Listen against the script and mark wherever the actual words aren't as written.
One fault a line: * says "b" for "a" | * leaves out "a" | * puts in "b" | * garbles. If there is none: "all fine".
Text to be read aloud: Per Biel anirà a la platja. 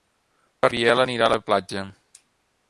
all fine